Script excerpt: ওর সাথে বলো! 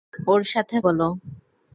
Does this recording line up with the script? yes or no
yes